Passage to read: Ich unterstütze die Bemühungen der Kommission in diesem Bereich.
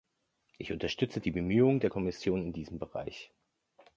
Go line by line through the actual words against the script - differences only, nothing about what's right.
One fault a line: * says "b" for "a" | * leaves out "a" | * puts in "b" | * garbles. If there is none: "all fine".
all fine